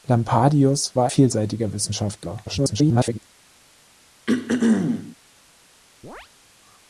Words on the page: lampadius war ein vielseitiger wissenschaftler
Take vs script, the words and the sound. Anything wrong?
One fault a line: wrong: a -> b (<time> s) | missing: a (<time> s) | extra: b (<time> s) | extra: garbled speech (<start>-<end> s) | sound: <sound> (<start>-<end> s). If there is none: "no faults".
missing: ein (1.1 s)
extra: garbled speech (2.5-3.2 s)
sound: throat clearing (4.3-5.2 s)
sound: chirp (6.0-6.3 s)